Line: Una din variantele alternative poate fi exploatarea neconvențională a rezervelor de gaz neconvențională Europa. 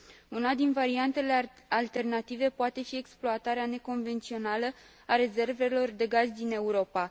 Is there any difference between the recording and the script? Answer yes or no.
yes